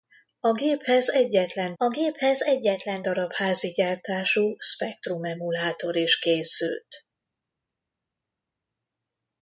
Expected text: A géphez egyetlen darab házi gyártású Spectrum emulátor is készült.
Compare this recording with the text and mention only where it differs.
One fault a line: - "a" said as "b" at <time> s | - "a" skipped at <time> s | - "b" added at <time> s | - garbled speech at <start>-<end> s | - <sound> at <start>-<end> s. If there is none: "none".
- "a géphez egyetlen" added at 1.8 s